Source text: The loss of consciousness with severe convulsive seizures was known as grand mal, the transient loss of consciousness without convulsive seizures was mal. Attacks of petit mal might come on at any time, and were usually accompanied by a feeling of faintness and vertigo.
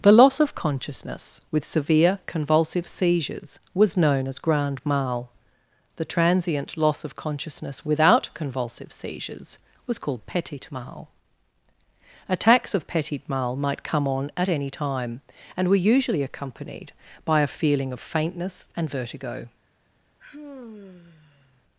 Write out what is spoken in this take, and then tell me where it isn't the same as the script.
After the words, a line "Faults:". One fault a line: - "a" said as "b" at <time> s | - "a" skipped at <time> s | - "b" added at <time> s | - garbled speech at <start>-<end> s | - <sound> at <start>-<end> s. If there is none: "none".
The loss of consciousness with severe convulsive seizures was known as grand mal, the transient loss of consciousness without convulsive seizures was called petit mal. Attacks of petit mal might come on at any time, and were usually accompanied by a feeling of faintness and vertigo.
Faults:
- "called petit" added at 10.0 s
- sigh at 20.2-21.6 s